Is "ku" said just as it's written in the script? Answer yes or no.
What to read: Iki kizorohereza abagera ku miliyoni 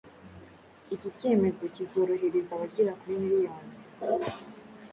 no